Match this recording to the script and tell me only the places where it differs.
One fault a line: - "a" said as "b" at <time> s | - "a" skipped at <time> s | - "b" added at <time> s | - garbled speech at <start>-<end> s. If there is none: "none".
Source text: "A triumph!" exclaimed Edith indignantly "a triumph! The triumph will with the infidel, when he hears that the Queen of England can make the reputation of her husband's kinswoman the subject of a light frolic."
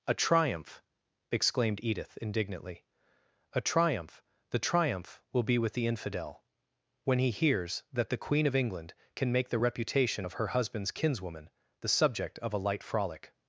- "be" added at 5.4 s